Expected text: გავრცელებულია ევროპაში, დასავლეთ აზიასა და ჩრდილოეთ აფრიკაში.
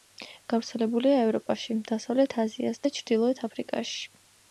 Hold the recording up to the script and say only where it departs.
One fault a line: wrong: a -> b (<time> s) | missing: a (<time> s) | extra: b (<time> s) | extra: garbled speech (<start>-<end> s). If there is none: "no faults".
no faults